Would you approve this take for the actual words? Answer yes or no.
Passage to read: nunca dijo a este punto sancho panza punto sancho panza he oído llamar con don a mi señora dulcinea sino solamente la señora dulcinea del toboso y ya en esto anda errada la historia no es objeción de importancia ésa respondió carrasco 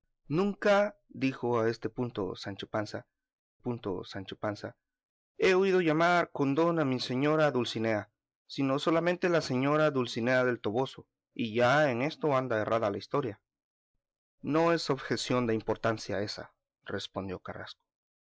yes